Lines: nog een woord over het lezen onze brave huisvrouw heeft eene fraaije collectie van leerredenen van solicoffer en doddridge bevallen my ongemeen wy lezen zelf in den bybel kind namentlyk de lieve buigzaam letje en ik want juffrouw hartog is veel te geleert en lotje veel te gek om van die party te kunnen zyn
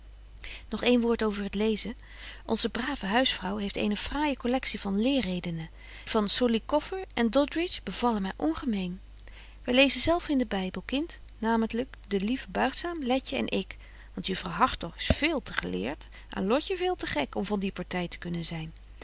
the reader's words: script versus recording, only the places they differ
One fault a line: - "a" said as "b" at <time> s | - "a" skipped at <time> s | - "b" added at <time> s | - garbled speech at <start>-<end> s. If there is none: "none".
none